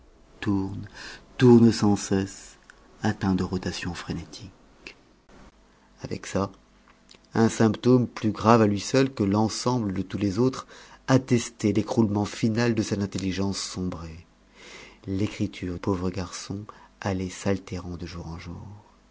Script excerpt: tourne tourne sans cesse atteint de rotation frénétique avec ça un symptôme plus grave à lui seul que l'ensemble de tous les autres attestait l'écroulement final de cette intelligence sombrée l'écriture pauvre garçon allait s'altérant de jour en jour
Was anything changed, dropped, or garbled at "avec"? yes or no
no